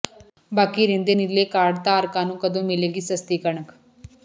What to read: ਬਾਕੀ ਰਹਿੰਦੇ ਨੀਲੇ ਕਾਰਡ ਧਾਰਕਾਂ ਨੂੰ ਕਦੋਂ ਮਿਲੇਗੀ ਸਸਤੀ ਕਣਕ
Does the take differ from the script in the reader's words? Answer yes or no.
no